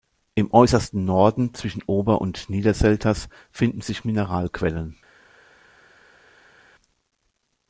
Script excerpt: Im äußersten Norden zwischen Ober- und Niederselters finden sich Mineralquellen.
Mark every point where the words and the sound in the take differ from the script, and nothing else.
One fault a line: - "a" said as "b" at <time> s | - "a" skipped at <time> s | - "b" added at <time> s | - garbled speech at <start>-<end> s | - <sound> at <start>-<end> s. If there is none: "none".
none